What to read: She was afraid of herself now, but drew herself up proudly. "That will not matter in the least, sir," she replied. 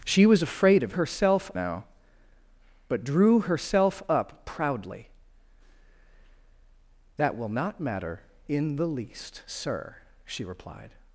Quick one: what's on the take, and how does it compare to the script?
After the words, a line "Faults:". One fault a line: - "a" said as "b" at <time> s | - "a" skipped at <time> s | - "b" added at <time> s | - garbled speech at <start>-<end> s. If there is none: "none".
She was afraid of herself now, but drew herself up proudly. "That will not matter in the least, sir," she replied.
Faults:
none